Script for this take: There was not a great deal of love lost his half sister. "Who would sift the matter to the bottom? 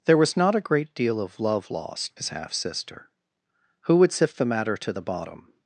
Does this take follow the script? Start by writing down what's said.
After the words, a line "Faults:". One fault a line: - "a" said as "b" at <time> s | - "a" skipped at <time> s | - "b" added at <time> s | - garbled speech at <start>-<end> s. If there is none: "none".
There was not a great deal of love lost his half sister. "Who would sift the matter to the bottom?
Faults:
none